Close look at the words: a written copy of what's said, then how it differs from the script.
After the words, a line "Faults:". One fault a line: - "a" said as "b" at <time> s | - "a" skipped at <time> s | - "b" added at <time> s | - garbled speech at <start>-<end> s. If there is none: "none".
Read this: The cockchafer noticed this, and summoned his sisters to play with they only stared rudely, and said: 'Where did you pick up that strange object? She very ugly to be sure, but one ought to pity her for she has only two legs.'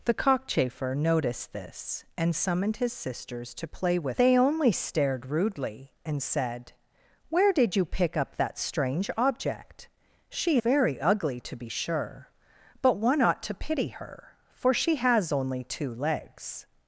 The cockchafer noticed this, and summoned his sisters to play with they only stared rudely, and said: 'Where did you pick up that strange object? She very ugly to be sure, but one ought to pity her for she has only two legs.'
Faults:
none